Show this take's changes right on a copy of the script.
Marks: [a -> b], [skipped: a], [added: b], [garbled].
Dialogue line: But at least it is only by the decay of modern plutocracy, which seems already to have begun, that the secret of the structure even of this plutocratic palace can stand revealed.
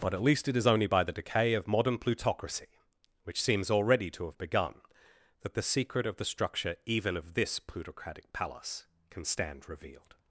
But at least it is only by the decay of modern plutocracy, which seems already to have begun, that the secret of the structure even of this plutocratic palace can stand revealed.